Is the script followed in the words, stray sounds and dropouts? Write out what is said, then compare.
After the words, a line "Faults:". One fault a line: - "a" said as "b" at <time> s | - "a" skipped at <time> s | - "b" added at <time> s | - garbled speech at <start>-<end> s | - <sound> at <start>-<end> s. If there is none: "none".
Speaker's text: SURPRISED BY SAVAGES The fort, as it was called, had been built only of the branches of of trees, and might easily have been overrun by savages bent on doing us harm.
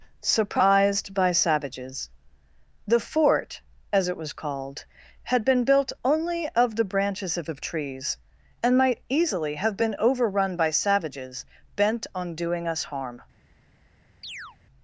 SURPRISED BY SAVAGES The fort, as it was called, had been built only of the branches of of trees, and might easily have been overrun by savages bent on doing us harm.
Faults:
- chirp at 14.2-14.6 s